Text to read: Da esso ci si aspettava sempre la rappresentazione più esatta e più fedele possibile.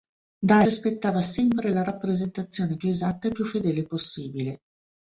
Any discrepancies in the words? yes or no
yes